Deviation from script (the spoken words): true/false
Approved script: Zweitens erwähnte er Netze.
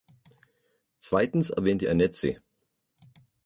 false